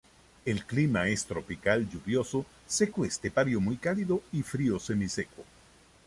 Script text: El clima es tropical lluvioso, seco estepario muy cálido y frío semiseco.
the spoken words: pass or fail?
pass